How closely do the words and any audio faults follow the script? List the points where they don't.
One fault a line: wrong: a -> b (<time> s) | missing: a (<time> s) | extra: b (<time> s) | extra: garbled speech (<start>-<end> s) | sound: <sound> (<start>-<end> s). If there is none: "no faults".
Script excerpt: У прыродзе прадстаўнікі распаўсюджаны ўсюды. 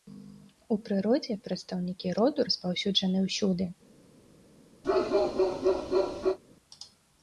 extra: роду (2.2 s)
sound: bark (4.8-6.4 s)